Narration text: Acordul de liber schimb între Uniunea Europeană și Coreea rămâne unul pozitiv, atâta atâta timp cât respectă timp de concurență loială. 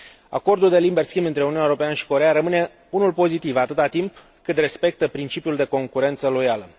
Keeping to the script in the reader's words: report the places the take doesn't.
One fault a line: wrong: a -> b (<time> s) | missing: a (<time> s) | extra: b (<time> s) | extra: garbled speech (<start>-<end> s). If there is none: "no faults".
missing: atâta (3.9 s)
wrong: timp -> principiul (5.1 s)